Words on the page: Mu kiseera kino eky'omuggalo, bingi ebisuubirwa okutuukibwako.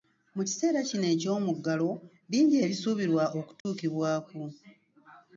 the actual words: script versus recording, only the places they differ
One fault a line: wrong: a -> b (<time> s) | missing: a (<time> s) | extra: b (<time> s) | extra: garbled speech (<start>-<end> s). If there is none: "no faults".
no faults